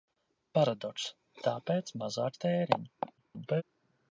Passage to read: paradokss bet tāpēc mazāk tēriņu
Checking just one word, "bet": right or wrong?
wrong